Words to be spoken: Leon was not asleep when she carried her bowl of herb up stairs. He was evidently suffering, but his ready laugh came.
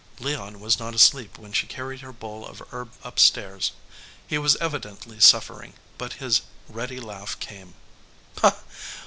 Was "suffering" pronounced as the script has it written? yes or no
yes